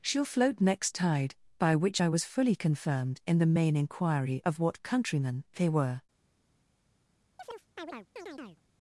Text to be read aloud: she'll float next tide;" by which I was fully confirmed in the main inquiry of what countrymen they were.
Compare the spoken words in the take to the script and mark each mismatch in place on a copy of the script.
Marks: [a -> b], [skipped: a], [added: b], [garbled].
she'll float next tide;" by which I was fully confirmed in the main inquiry of what countrymen they were.